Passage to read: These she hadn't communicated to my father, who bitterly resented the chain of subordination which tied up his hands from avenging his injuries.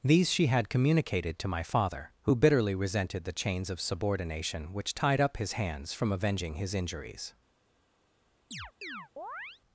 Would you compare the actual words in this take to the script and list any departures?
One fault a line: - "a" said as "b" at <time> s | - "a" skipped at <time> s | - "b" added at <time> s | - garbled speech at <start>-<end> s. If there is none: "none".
- "hadn't" said as "had" at 0.5 s
- "chain" said as "chains" at 3.3 s